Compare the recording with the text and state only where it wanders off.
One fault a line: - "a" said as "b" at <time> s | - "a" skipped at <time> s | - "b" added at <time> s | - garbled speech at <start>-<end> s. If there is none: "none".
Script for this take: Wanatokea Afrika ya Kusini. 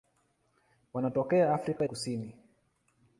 - "ya" skipped at 1.9 s